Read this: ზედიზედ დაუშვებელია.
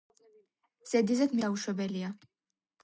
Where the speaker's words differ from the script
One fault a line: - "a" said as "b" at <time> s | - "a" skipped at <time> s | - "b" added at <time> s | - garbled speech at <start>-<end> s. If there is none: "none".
none